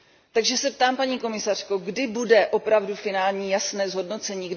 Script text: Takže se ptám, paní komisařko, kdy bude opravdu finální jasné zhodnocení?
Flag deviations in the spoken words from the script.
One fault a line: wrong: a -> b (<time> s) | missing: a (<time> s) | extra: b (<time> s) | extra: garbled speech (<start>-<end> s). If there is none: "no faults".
no faults